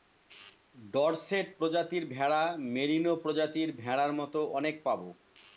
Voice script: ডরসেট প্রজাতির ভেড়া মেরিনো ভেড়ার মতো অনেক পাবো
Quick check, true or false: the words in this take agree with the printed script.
false